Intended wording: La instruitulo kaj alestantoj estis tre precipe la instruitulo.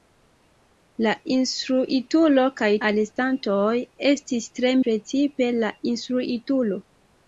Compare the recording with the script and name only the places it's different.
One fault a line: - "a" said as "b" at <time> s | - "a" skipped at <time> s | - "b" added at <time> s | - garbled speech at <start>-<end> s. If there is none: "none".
none